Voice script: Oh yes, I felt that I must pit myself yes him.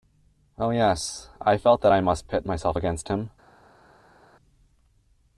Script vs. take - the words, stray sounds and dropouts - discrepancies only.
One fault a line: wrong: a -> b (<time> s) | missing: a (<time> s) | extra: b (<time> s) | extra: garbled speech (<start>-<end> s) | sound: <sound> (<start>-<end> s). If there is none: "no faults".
wrong: yes -> against (2.8 s)